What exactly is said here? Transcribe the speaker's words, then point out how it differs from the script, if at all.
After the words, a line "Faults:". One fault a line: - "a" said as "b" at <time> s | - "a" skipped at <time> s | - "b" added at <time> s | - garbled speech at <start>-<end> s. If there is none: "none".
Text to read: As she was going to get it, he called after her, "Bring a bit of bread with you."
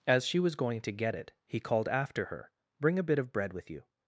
As she was going to get it, he called after her, "Bring a bit of bread with you."
Faults:
none